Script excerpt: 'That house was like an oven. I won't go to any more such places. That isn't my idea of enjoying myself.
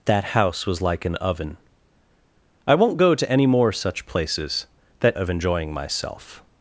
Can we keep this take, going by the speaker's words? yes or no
no